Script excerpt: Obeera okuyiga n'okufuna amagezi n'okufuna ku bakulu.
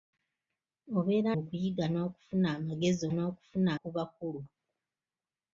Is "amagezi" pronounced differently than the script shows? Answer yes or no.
no